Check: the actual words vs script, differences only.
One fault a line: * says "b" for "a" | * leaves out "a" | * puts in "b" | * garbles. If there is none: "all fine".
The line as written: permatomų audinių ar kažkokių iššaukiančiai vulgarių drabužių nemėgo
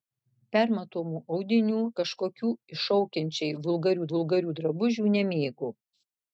* leaves out "ar"
* puts in "vulgarių"